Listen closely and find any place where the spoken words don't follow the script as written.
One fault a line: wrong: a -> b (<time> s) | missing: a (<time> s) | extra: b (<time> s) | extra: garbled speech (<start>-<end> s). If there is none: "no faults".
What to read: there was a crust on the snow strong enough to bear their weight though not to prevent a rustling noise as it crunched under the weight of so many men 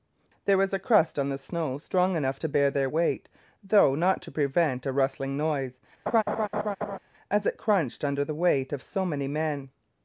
no faults